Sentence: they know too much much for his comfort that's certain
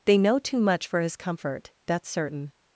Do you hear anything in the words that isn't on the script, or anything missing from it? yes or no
yes